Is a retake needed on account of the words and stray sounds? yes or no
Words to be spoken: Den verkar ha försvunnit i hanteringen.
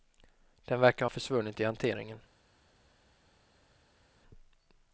no